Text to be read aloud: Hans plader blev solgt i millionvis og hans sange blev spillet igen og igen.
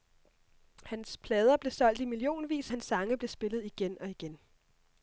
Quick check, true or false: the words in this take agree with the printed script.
false